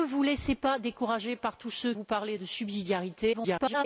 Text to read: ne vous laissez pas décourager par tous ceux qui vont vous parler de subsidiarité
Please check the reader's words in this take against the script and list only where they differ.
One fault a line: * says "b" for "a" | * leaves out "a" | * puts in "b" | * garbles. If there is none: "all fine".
* leaves out "qui vont"
* garbles